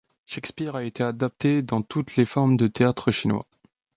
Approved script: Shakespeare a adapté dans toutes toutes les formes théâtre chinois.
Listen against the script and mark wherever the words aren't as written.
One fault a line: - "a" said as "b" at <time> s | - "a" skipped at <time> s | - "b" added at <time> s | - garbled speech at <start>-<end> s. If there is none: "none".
- "été" added at 0.8 s
- "toutes" skipped at 2.1 s
- "de" added at 2.5 s